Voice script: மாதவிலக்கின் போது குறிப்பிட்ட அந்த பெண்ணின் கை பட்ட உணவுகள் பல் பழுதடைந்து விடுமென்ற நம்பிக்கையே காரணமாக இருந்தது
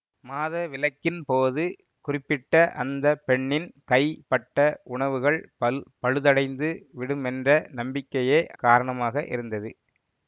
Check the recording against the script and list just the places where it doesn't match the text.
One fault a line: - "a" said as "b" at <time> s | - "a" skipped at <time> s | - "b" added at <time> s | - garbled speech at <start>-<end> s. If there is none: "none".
none